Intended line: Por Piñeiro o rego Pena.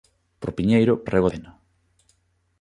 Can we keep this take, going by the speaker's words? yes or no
yes